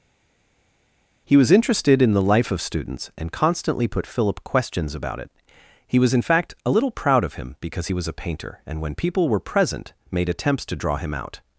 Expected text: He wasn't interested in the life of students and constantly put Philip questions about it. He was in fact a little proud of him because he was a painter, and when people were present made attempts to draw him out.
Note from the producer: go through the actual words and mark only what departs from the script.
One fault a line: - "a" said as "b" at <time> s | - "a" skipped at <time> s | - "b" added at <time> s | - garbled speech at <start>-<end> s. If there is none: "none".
- "wasn't" said as "was" at 1.4 s